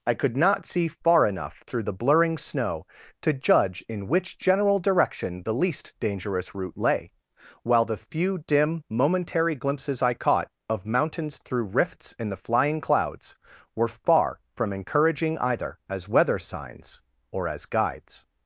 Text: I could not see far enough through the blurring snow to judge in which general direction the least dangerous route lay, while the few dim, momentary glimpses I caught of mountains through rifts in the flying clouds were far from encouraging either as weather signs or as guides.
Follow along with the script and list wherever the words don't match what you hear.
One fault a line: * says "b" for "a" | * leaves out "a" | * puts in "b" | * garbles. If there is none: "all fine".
all fine